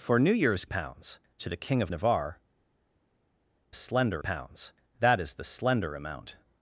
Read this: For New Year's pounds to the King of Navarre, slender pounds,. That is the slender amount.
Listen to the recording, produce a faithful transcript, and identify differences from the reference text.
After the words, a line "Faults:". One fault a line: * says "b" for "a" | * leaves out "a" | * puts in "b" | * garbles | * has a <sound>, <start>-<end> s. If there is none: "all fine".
For New Year's pounds to the King of Navarre, slender pounds,. That is the slender amount.
Faults:
all fine